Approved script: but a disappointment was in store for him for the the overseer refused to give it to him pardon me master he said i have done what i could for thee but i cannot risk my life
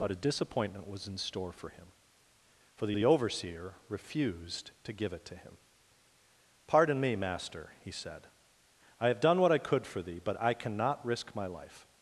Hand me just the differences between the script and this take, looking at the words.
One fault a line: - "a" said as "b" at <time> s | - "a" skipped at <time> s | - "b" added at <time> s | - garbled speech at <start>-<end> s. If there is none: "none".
none